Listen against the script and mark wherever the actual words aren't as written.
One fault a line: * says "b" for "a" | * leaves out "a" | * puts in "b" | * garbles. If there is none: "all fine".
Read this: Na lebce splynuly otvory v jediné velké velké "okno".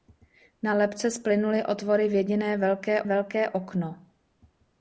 all fine